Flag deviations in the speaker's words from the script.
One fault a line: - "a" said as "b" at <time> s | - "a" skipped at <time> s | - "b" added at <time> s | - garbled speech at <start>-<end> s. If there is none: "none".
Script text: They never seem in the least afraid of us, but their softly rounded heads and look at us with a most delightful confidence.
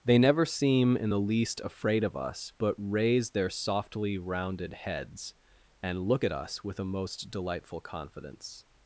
- "raise" added at 2.8 s